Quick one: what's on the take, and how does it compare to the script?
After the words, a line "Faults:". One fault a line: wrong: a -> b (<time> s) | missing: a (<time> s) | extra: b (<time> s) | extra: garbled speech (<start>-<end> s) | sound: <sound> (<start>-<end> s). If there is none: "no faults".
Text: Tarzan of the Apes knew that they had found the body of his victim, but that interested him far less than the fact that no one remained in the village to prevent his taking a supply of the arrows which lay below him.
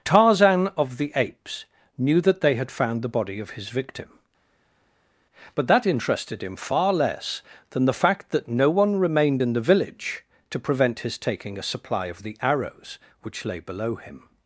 Tarzan of the Apes knew that they had found the body of his victim, but that interested him far less than the fact that no one remained in the village to prevent his taking a supply of the arrows which lay below him.
Faults:
no faults